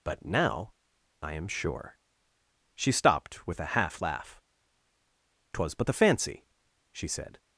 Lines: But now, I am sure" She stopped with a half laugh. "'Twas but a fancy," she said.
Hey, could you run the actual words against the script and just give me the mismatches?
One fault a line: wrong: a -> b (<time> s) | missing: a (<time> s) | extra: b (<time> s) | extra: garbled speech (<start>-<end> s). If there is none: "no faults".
wrong: a -> the (5.9 s)